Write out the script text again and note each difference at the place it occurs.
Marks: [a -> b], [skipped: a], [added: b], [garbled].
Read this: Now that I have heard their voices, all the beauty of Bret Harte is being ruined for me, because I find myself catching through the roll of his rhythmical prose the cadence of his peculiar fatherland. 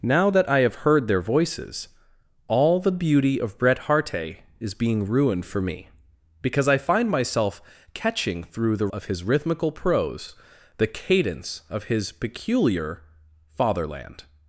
Now that I have heard their voices, all the beauty of Bret Harte is being ruined for me, because I find myself catching through the [skipped: roll] of his rhythmical prose the cadence of his peculiar fatherland.